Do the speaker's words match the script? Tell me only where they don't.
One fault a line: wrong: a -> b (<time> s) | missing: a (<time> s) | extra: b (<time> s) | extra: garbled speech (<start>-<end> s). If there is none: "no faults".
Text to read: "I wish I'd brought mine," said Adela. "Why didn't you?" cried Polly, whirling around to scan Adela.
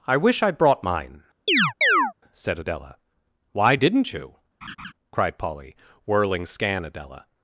missing: around to (6.4 s)